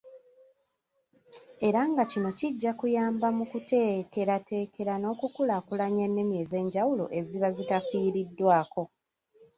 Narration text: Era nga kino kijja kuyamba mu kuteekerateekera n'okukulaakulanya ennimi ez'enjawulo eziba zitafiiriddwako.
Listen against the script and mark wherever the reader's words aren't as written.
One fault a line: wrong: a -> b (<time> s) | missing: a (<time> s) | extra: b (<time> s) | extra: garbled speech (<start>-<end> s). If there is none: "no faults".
no faults